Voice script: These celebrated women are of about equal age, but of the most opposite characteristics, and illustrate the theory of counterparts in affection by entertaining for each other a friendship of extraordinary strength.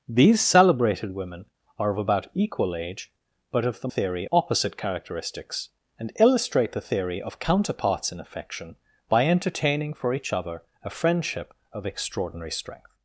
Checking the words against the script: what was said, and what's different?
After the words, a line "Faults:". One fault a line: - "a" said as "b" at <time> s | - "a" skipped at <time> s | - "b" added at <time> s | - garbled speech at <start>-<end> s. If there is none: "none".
These celebrated women are of about equal age, but of the theory opposite characteristics, and illustrate the theory of counterparts in affection by entertaining for each other a friendship of extraordinary strength.
Faults:
- "most" said as "theory" at 3.9 s